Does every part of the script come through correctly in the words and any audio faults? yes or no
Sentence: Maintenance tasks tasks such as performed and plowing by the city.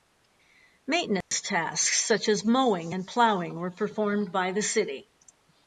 no